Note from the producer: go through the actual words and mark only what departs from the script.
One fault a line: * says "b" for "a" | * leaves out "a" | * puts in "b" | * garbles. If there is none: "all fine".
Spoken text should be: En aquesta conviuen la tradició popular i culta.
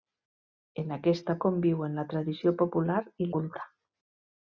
all fine